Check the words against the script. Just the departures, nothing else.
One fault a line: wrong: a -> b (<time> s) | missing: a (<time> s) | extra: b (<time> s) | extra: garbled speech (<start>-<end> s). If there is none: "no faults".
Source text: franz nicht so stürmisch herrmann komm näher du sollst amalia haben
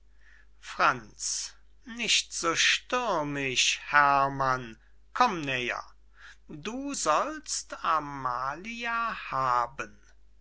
no faults